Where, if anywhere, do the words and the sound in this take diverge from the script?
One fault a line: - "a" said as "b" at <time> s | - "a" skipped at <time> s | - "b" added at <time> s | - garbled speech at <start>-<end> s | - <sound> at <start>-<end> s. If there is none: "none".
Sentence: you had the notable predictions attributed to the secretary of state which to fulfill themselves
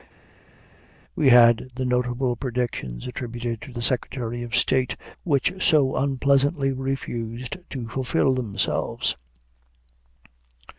- "you" said as "we" at 1.1 s
- "so unpleasantly refused" added at 5.6 s